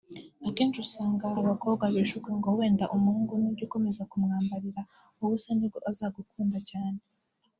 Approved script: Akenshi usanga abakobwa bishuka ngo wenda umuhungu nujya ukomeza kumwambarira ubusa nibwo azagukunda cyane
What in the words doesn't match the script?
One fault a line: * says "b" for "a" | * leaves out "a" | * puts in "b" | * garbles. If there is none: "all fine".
all fine